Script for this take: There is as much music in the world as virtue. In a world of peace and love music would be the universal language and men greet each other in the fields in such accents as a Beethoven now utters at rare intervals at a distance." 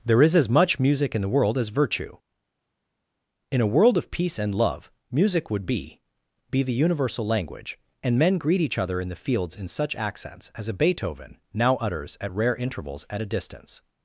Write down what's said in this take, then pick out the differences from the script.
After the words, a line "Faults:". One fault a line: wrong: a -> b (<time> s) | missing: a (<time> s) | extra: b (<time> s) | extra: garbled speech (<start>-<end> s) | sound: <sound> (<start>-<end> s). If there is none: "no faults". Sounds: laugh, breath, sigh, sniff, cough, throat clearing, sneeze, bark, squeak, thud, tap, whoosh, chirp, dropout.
There is as much music in the world as virtue. In a world of peace and love music would be be the universal language and men greet each other in the fields in such accents as a Beethoven now utters at rare intervals at a distance."
Faults:
extra: be (6.5 s)